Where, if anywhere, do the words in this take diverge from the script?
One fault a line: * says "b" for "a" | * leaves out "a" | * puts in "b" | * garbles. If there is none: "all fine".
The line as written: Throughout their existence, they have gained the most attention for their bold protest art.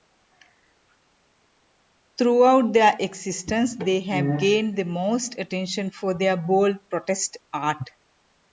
all fine